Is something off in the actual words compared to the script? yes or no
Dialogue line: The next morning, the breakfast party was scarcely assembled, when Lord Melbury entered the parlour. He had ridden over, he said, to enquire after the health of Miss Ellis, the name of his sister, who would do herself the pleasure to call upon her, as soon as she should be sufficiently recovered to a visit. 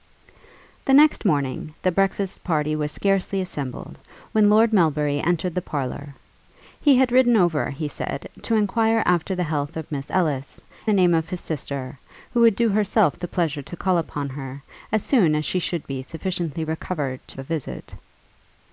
no